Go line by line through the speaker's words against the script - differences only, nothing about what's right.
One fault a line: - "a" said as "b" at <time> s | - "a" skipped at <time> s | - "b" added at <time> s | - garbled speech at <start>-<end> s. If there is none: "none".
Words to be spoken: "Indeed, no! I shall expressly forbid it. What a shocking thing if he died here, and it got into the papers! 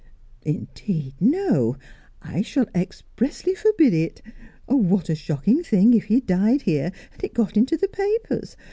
none